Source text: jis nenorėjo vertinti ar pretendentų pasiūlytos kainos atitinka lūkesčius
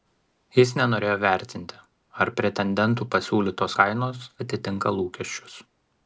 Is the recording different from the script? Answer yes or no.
no